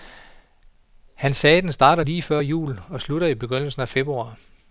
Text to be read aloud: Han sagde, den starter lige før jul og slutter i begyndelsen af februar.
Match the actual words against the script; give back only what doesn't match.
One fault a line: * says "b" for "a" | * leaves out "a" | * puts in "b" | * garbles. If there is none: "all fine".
all fine